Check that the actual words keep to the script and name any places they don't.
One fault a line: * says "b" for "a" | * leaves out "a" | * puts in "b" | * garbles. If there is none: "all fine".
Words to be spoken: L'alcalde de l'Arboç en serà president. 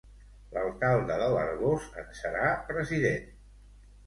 all fine